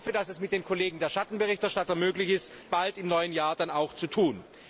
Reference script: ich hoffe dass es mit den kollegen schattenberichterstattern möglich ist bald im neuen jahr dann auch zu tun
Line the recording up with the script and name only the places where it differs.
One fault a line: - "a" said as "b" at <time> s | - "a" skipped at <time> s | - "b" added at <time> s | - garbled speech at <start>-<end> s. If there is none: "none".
none